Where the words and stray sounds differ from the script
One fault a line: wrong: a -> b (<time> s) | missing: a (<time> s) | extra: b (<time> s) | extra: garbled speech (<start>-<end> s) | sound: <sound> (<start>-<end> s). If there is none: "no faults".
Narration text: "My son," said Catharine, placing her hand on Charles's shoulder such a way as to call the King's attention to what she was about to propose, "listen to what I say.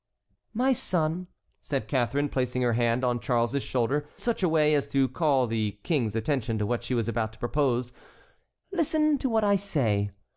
no faults